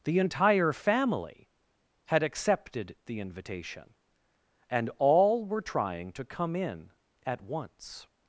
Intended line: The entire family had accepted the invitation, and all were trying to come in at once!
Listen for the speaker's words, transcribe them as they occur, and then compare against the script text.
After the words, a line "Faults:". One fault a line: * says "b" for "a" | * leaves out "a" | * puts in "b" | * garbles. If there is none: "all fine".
The entire family had accepted the invitation, and all were trying to come in at once!
Faults:
all fine